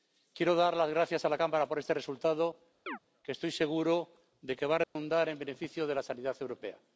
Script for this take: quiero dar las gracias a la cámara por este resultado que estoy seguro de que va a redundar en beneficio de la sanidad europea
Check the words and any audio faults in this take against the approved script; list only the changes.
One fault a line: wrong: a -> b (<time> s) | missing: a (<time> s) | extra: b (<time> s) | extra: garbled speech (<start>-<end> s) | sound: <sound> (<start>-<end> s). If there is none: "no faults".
sound: chirp (2.9-3.0 s)
sound: dropout (4.8-5.0 s)